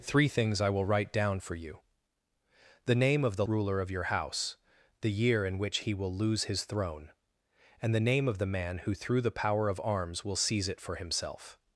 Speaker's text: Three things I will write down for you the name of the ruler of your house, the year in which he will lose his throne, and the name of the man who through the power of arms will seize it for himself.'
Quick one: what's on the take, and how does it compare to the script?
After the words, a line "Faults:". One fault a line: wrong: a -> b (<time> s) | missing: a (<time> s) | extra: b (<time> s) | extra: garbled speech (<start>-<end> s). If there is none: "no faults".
Three things I will write down for you the name of the ruler of your house, the year in which he will lose his throne, and the name of the man who through the power of arms will seize it for himself.'
Faults:
no faults